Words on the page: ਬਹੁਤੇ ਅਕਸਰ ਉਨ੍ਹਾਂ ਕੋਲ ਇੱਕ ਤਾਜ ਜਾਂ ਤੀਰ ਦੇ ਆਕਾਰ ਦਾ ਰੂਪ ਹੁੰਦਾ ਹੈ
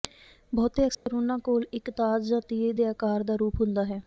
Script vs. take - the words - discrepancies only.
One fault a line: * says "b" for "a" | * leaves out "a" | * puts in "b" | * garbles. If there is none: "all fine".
all fine